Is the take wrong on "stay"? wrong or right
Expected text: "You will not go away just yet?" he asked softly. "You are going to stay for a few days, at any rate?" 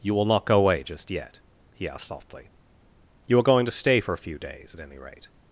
right